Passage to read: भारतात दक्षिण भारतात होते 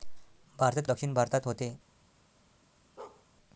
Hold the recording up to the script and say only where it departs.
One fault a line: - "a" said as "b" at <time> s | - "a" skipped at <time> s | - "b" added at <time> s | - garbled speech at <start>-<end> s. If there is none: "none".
none